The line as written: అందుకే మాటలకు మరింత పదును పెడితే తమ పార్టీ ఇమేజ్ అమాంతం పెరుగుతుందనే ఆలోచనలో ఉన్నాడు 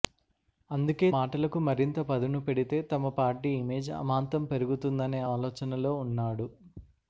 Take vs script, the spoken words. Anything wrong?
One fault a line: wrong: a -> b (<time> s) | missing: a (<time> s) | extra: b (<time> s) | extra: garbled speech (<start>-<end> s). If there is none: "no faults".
no faults